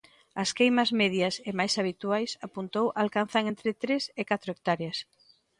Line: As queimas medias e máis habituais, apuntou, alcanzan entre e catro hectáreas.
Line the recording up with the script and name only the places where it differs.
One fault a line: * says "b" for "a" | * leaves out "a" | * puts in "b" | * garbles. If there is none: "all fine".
* puts in "tres"